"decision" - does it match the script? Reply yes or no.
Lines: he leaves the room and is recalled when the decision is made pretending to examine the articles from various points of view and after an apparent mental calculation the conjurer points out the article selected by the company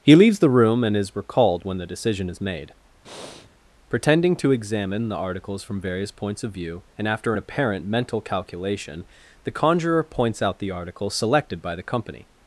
yes